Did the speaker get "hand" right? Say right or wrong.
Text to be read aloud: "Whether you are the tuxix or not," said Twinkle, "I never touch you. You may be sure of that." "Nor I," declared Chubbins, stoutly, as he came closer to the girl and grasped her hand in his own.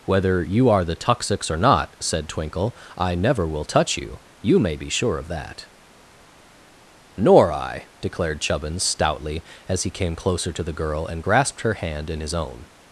right